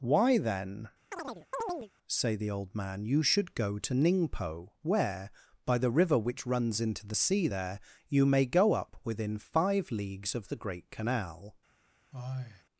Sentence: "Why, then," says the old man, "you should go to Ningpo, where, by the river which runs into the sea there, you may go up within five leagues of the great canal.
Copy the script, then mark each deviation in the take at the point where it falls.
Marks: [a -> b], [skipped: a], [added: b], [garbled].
"Why, then," [says -> say] the old man, "you should go to Ningpo, where, by the river which runs into the sea there, you may go up within five leagues of the great canal.